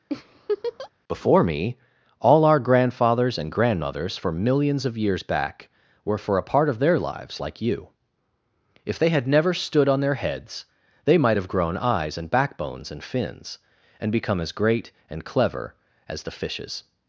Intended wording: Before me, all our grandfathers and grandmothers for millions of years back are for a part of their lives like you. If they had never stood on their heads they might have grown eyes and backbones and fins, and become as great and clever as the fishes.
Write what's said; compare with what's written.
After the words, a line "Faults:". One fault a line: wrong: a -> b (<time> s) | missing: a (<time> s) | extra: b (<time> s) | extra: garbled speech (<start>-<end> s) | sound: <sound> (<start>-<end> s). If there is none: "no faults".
Before me, all our grandfathers and grandmothers for millions of years back were for a part of their lives like you. If they had never stood on their heads they might have grown eyes and backbones and fins, and become as great and clever as the fishes.
Faults:
sound: laugh (0.1-0.9 s)
wrong: are -> were (6.1 s)